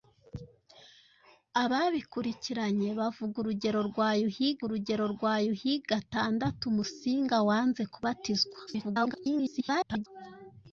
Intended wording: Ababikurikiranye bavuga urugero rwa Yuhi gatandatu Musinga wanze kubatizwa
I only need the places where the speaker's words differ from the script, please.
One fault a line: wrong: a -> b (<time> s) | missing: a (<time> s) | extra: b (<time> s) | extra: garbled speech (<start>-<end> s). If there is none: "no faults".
extra: urugero rwa Yuhi (4.7 s)
extra: garbled speech (8.7-10.1 s)